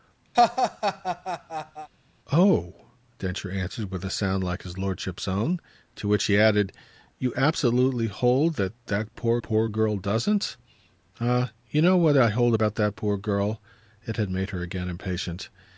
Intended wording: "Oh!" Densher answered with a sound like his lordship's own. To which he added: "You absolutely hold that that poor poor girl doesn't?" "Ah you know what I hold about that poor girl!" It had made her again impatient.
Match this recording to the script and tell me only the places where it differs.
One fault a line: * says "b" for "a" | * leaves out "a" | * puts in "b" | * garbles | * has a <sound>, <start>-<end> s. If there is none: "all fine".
* has a laugh, 0.3-1.9 s